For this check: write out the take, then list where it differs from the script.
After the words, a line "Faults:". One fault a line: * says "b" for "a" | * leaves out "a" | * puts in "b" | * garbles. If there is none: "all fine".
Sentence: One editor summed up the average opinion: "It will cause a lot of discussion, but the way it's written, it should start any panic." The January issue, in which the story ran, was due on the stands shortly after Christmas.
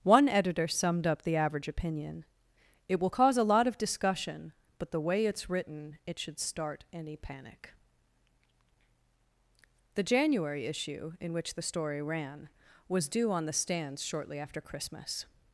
One editor summed up the average opinion: "It will cause a lot of discussion, but the way it's written, it should start any panic." The January issue, in which the story ran, was due on the stands shortly after Christmas.
Faults:
all fine